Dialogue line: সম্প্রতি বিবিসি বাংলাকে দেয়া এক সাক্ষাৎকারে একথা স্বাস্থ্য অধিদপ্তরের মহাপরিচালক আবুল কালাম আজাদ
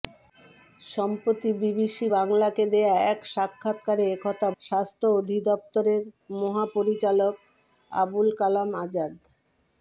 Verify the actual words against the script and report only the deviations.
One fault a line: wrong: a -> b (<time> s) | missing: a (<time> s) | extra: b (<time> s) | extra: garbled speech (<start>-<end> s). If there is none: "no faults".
no faults